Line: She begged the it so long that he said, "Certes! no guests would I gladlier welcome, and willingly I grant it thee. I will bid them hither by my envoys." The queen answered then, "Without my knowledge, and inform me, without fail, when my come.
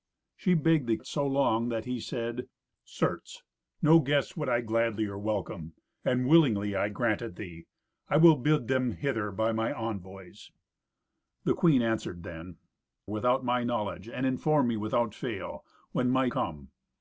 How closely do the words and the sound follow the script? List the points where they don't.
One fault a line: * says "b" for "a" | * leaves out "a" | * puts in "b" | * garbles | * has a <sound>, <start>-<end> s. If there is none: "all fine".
all fine